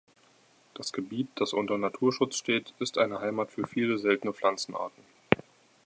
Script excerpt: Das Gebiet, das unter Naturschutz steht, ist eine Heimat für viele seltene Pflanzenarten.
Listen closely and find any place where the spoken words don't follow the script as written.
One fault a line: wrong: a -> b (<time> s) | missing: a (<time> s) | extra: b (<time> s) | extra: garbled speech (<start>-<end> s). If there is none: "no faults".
no faults